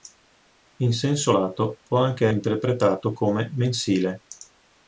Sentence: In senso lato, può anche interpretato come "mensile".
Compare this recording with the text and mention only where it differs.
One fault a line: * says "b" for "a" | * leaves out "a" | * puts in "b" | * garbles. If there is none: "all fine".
all fine